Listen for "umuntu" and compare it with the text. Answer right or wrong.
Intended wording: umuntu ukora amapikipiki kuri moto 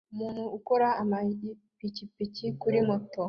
right